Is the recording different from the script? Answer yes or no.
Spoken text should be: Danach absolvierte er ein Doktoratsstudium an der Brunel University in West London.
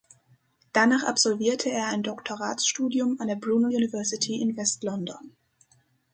no